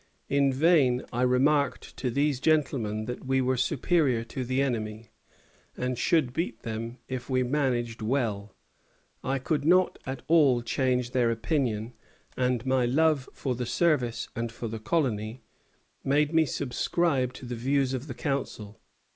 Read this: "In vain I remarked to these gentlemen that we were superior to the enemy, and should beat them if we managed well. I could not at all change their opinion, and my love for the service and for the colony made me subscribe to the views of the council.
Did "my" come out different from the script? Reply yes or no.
no